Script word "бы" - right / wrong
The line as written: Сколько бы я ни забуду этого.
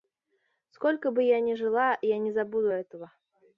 right